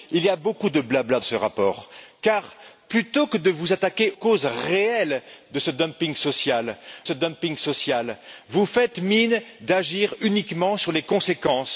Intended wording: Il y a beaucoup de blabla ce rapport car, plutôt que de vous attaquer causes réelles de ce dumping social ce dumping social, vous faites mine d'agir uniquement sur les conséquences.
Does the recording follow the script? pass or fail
pass